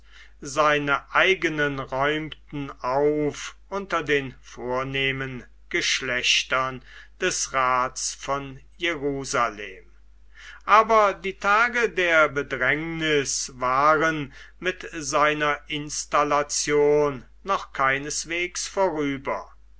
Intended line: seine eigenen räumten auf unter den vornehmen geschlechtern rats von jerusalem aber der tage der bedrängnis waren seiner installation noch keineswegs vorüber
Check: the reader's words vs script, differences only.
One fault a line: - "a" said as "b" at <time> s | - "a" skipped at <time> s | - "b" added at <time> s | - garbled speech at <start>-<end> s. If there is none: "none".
- "des" added at 7.2 s
- "der" said as "die" at 11.1 s
- "mit" added at 14.6 s